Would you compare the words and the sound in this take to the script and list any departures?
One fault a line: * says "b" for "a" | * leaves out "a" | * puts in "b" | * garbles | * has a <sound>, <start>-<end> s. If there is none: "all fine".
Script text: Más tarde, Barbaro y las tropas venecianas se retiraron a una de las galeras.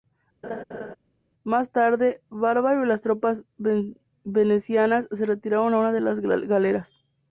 * has a laugh, 0.4-1.0 s